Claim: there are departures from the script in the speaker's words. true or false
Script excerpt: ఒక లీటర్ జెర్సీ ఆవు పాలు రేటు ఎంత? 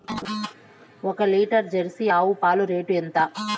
false